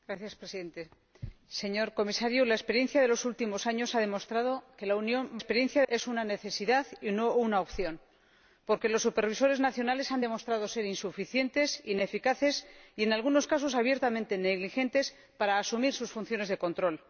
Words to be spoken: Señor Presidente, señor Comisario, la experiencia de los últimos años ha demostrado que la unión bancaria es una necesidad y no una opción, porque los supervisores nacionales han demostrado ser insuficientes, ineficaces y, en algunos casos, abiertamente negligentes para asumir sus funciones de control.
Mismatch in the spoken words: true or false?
true